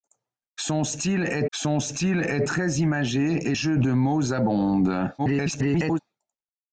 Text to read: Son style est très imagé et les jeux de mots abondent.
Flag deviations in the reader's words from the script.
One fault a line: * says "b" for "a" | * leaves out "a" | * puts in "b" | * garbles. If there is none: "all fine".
* puts in "son style est"
* leaves out "les"
* garbles